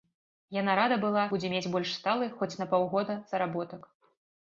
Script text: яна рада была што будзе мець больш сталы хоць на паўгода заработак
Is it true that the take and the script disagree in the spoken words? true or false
true